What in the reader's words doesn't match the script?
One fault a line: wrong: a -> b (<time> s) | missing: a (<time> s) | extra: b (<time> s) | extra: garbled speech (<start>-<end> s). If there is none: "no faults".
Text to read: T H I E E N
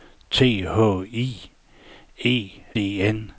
no faults